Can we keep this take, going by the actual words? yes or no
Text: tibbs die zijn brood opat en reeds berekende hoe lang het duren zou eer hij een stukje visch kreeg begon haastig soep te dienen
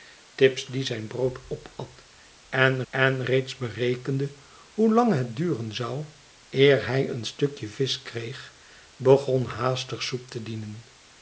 no